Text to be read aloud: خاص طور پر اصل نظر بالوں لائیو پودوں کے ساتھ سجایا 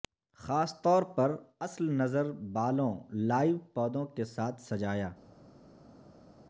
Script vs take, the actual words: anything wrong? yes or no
no